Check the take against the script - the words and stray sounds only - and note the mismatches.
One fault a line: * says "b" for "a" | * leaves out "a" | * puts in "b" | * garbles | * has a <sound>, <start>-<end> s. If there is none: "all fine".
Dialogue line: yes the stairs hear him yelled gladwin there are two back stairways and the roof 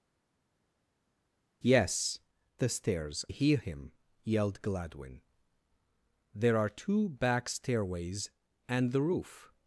all fine